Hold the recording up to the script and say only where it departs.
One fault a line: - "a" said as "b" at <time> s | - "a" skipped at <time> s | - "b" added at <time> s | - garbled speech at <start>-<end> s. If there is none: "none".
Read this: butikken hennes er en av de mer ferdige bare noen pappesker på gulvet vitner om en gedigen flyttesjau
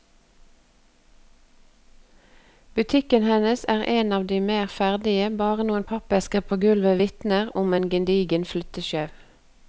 none